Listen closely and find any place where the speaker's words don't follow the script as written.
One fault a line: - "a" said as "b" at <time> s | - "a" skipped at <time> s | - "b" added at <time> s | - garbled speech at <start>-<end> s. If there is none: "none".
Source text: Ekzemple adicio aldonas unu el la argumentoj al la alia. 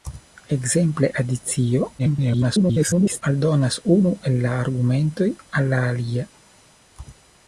- garbled speech at 2.0-3.2 s